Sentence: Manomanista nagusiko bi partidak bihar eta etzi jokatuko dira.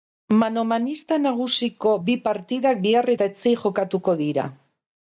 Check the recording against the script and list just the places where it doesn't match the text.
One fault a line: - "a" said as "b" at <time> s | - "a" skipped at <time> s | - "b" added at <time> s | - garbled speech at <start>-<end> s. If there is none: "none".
none